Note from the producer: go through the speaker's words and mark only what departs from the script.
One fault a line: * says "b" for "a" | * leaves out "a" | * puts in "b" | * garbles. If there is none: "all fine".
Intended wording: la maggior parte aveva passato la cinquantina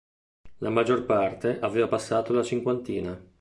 all fine